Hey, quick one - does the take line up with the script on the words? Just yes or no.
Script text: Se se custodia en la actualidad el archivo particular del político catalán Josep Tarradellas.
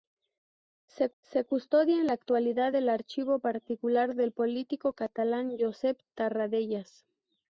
yes